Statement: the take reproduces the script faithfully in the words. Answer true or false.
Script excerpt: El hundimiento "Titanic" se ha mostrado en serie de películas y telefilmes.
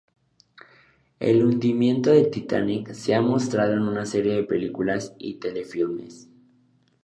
false